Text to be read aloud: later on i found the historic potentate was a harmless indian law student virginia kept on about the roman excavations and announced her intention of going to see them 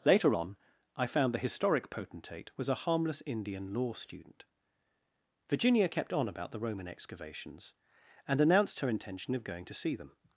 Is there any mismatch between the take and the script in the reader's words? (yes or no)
no